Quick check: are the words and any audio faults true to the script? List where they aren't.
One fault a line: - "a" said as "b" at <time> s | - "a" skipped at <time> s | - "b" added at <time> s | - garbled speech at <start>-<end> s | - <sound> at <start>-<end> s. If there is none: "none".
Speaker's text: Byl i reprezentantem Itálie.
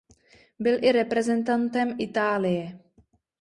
none